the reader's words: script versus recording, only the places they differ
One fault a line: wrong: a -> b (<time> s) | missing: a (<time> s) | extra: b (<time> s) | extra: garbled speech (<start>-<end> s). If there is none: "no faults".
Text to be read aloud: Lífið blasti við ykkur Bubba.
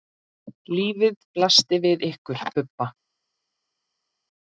no faults